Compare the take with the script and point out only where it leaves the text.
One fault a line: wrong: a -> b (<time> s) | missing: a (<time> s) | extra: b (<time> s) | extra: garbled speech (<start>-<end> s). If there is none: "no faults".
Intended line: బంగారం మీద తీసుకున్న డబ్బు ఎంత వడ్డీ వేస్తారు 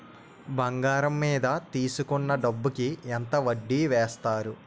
extra: కి (2.8 s)